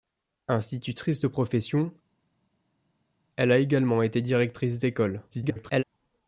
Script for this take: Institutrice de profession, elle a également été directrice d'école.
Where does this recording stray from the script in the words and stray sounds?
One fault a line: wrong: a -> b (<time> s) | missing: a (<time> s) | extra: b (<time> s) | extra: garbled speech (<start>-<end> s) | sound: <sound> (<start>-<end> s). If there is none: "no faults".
extra: garbled speech (5.3-5.8 s)